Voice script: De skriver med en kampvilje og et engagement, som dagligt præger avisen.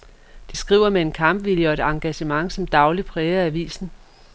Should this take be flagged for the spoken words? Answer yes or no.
no